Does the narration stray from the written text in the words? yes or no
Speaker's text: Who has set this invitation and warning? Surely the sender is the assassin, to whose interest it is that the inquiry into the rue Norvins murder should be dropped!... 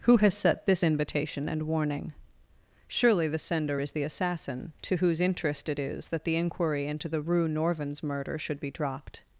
no